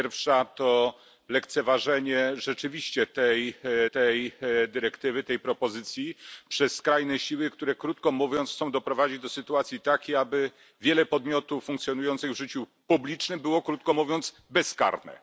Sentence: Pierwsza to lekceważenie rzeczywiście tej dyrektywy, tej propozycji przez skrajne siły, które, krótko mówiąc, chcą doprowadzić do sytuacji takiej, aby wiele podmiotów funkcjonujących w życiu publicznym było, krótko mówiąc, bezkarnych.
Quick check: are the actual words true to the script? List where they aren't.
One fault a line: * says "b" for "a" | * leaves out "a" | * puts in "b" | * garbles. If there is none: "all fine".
* puts in "tej"